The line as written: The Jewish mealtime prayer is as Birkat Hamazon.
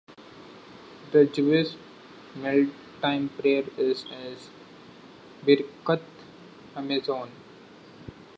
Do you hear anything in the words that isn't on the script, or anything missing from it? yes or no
no